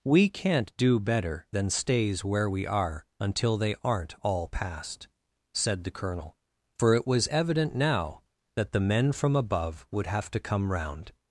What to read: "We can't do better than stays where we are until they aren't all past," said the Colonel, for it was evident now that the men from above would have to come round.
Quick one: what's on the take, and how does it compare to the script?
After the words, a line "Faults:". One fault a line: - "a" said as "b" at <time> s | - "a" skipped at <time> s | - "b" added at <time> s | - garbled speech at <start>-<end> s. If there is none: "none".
"We can't do better than stays where we are until they aren't all past," said the Colonel, for it was evident now that the men from above would have to come round.
Faults:
none